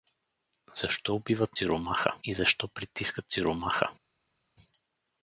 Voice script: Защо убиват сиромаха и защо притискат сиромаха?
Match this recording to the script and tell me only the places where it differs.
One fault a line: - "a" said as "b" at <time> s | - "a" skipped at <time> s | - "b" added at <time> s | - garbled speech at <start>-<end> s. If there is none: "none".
none